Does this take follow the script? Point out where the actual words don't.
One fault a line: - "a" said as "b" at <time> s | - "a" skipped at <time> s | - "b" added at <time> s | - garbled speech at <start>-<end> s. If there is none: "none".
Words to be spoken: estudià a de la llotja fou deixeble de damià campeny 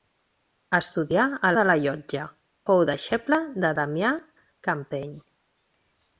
none